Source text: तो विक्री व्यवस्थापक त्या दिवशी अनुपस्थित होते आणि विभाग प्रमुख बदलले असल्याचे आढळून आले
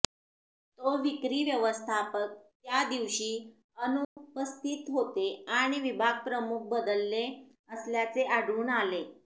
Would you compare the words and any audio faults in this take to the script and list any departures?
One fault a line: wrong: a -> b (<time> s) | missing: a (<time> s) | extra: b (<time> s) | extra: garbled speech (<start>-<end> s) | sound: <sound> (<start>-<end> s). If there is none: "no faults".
sound: dropout (4.0-4.2 s)